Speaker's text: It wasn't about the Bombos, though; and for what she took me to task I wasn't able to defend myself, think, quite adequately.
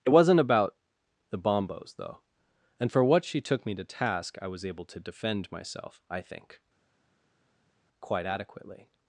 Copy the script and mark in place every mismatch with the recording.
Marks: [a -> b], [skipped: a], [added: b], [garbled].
It wasn't about the Bombos, though; and for what she took me to task I [wasn't -> was] able to defend myself, [added: I] think, quite adequately.